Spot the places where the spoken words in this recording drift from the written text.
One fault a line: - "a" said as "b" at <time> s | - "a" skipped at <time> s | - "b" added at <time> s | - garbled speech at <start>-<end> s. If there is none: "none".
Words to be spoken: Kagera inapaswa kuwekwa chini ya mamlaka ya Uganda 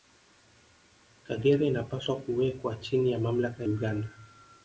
- "ya" skipped at 3.6 s